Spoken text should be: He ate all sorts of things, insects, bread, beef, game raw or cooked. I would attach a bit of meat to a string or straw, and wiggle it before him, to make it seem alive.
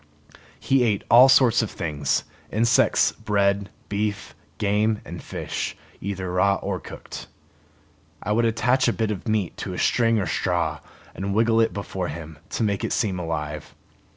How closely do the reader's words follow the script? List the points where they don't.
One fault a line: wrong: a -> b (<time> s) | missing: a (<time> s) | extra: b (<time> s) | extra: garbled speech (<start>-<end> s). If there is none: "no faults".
extra: and fish either (5.0 s)